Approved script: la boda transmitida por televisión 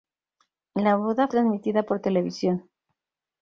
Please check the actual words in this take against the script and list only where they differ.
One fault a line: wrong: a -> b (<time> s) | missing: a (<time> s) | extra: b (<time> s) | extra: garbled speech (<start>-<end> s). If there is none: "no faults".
no faults